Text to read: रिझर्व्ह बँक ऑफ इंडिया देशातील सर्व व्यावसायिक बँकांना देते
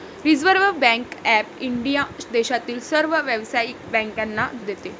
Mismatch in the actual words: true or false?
false